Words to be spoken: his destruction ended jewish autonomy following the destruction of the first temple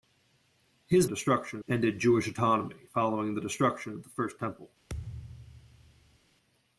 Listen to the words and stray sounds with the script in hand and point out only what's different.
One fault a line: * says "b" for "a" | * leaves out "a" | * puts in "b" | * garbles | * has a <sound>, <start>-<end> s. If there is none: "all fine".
* has a thud, 4.9-6.2 s